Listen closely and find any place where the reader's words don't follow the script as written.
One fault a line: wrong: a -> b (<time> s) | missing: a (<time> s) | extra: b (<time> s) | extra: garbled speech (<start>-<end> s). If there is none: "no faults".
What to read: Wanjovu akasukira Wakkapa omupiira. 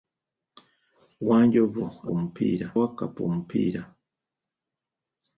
wrong: akasukira -> omupiira (2.1 s)